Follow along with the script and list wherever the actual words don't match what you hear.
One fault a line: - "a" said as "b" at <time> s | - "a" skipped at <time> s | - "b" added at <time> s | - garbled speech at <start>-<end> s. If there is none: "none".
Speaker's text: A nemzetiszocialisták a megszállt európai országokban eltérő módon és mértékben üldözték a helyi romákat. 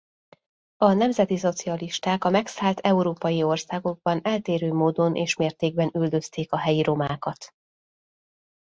none